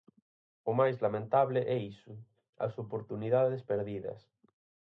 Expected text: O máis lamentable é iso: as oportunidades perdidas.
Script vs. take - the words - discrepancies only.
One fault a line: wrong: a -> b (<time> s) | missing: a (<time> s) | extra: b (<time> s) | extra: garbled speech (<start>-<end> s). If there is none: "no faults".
no faults